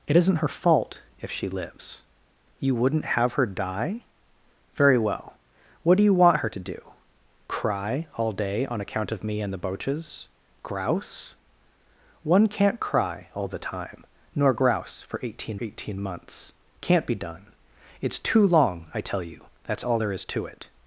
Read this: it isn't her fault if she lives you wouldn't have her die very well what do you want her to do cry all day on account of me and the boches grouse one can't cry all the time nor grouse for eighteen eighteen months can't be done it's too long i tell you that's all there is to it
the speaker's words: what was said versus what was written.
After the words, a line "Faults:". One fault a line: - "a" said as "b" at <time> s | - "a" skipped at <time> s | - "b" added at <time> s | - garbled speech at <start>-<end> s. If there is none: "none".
it isn't her fault if she lives you wouldn't have her die very well what do you want her to do cry all day on account of me and the boches grouse one can't cry all the time nor grouse for eighteen eighteen months can't be done it's too long i tell you that's all there is to it
Faults:
none